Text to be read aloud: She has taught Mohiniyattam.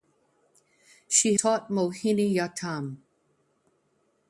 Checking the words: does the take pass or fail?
fail